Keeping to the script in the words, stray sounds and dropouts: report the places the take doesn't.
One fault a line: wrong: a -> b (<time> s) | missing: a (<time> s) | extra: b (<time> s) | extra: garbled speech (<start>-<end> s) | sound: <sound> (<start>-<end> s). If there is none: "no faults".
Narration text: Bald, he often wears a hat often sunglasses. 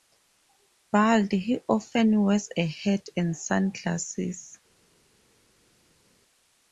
wrong: often -> and (3.2 s)